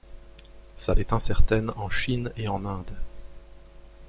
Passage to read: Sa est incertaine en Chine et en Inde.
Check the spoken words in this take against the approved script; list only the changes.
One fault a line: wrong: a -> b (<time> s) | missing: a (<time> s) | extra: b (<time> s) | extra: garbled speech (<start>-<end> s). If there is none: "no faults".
no faults